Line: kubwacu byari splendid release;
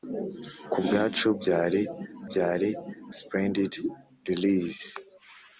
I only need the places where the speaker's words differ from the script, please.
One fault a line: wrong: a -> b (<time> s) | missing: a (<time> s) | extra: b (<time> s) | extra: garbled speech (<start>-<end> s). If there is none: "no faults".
extra: byari (2.3 s)